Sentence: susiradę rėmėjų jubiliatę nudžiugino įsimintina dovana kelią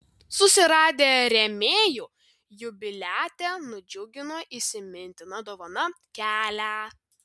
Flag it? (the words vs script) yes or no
no